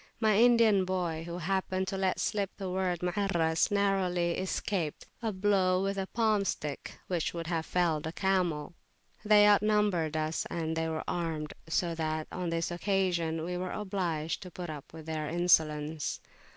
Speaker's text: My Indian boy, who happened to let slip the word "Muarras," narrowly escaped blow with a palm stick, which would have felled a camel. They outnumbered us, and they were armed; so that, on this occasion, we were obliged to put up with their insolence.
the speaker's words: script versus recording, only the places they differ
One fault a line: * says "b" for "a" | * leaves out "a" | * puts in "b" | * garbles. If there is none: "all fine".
* puts in "a"